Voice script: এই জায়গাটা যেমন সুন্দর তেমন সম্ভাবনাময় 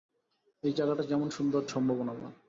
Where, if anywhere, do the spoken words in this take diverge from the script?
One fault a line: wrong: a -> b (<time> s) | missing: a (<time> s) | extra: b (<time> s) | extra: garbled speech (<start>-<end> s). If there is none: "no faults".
missing: তেমন (1.7 s)